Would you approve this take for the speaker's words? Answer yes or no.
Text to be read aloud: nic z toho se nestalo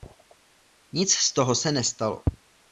yes